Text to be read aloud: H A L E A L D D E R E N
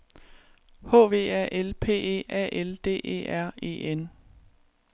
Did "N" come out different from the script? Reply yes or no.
no